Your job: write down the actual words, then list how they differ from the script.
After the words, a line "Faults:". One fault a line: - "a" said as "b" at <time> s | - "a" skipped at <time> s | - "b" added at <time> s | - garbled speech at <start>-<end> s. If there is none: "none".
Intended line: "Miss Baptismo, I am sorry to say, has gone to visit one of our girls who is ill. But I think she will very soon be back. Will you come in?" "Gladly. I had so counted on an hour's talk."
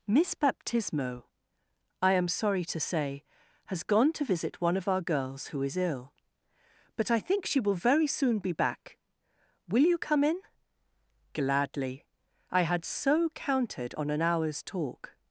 "Miss Baptismo, I am sorry to say, has gone to visit one of our girls who is ill. But I think she will very soon be back. Will you come in?" "Gladly. I had so counted on an hour's talk."
Faults:
none